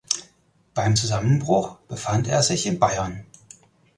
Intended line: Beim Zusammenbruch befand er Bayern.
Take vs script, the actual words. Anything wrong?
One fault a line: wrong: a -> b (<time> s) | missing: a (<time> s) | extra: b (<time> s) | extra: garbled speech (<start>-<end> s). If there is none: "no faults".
extra: sich in (2.4 s)